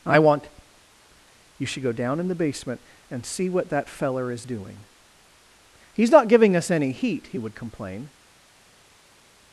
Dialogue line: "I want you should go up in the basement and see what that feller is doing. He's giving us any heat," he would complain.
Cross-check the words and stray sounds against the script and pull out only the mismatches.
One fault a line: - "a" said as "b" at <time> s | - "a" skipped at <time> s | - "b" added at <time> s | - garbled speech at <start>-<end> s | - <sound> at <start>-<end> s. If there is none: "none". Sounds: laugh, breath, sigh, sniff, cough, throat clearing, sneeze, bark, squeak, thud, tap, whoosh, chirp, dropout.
- "up" said as "down" at 1.9 s
- "not" added at 6.1 s